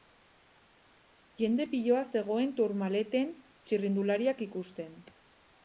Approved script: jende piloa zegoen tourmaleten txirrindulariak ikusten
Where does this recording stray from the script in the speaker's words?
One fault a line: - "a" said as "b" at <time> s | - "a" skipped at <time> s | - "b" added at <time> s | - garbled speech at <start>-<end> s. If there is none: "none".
none